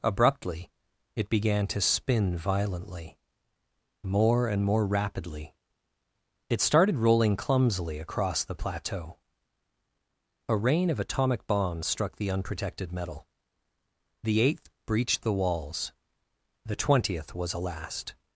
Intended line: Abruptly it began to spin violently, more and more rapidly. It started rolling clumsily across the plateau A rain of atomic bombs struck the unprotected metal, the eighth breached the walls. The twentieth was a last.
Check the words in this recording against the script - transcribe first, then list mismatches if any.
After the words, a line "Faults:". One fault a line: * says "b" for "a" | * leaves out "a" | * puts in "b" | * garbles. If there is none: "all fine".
Abruptly it began to spin violently, more and more rapidly. It started rolling clumsily across the plateau A rain of atomic bombs struck the unprotected metal, the eighth breached the walls. The twentieth was a last.
Faults:
all fine